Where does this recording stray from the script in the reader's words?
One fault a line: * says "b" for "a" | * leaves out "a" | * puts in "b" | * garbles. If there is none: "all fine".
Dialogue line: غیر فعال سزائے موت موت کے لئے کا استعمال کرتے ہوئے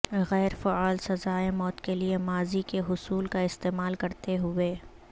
* says "کے لئے ماضی" for "موت"
* says "حصول" for "لئے"